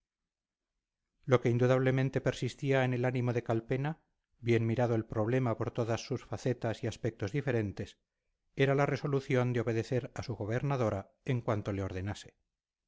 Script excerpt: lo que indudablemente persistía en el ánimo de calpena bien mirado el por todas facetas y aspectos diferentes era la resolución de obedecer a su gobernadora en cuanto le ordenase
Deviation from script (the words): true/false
true